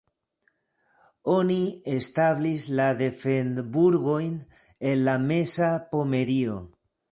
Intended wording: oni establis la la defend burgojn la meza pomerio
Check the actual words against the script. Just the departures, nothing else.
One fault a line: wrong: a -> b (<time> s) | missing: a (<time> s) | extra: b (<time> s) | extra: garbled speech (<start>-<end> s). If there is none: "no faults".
missing: la (2.9 s)
extra: en (4.9 s)